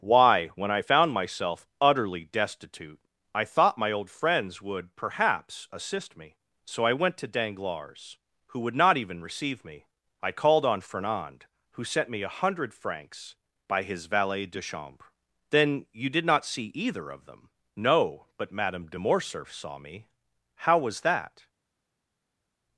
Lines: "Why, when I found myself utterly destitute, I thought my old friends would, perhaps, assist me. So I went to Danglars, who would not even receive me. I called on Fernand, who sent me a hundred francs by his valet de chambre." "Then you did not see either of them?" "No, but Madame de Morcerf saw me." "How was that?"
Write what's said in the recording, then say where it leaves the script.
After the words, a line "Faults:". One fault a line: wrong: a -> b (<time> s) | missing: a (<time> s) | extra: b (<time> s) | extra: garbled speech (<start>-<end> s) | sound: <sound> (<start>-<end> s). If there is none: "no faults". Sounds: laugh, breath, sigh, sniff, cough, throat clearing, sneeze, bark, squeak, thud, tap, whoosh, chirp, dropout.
"Why, when I found myself utterly destitute, I thought my old friends would, perhaps, assist me. So I went to Danglars, who would not even receive me. I called on Fernand, who sent me a hundred francs by his valet de chambre." "Then you did not see either of them?" "No, but Madame de Morcerf saw me." "How was that?"
Faults:
no faults